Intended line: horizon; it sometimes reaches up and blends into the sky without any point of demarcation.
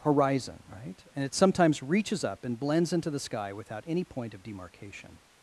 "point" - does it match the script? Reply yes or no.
yes